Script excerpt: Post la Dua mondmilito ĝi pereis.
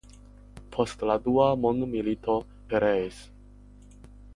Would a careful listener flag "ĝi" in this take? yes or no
yes